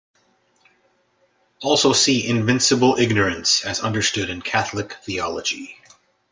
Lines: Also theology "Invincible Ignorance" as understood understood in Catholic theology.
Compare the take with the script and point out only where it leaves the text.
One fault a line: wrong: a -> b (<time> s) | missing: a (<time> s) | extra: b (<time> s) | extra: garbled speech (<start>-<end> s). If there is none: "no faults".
wrong: theology -> see (1.9 s)
missing: understood (4.3 s)